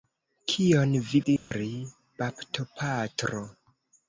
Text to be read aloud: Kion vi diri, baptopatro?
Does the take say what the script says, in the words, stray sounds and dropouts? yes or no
no